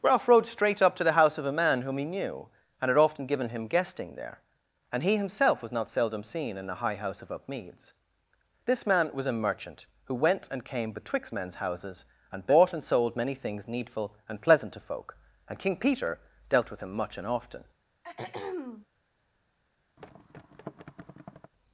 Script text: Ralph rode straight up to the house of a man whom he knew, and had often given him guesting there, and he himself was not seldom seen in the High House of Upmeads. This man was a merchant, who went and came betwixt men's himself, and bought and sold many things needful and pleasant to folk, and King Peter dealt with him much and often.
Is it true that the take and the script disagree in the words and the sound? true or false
true